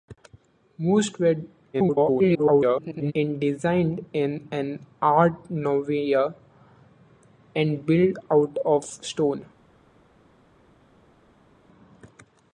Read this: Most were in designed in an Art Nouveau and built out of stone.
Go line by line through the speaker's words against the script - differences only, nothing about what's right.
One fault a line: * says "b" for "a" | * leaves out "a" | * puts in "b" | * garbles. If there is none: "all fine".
* garbles